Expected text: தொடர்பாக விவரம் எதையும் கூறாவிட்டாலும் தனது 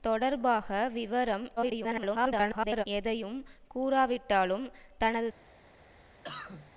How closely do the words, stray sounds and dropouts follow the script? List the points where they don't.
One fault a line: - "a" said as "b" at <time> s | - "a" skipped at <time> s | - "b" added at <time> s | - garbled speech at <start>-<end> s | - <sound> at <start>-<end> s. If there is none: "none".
- garbled speech at 1.6-2.8 s
- cough at 6.2-6.7 s